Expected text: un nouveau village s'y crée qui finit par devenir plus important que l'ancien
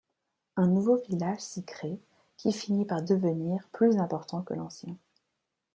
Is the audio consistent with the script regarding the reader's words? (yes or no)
yes